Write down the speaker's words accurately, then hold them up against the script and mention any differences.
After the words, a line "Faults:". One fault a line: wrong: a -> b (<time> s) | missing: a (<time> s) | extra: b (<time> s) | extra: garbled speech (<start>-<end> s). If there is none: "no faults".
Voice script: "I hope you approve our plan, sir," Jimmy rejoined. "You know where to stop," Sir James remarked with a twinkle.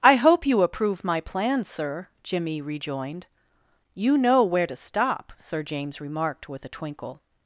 "I hope you approve my plan, sir," Jimmy rejoined. "You know where to stop," Sir James remarked with a twinkle.
Faults:
wrong: our -> my (1.0 s)